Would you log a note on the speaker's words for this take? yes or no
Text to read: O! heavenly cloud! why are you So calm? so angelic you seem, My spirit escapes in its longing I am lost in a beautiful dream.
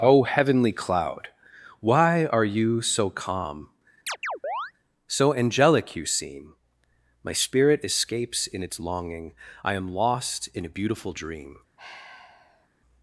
no